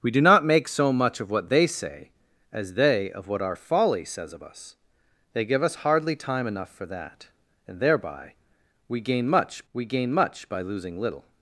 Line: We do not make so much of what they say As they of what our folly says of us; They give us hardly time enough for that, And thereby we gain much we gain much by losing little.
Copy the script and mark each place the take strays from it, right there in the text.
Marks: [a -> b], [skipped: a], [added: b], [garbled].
We do not make so much of what they say As they of what our folly says of us; They give us hardly time enough for that, And thereby we gain much we gain much by losing little.